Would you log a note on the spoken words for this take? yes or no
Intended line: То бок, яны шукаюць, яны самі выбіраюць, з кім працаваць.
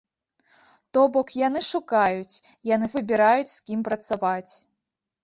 yes